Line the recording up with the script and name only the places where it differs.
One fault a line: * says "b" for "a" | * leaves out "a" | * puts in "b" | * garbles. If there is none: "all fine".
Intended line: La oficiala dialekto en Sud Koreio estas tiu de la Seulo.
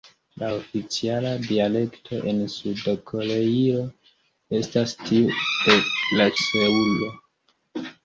all fine